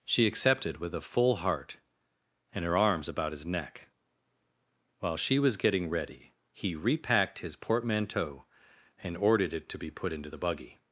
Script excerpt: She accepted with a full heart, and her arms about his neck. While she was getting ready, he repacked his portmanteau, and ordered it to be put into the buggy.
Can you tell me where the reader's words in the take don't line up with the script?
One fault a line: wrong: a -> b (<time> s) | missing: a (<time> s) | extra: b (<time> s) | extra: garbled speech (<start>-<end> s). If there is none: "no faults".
no faults